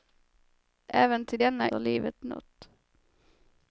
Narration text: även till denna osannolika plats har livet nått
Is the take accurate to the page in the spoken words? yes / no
no